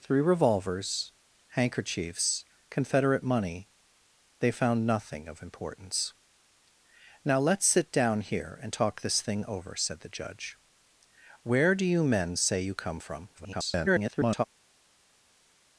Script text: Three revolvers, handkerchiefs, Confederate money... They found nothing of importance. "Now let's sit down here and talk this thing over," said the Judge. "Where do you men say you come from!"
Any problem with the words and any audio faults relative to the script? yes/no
yes